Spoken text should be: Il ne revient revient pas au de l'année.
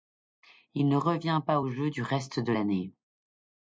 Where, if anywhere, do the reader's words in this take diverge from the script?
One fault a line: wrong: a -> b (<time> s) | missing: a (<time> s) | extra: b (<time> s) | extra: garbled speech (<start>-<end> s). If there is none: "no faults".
missing: revient (1.4 s)
extra: jeu du reste (1.7 s)